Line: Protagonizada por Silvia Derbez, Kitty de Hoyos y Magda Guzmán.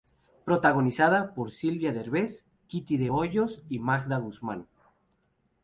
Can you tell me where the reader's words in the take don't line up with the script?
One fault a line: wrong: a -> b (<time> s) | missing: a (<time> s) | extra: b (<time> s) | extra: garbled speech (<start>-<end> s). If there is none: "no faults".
no faults